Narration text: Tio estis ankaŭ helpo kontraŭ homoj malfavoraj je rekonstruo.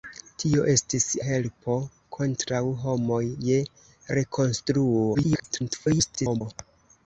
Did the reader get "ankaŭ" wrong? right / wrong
wrong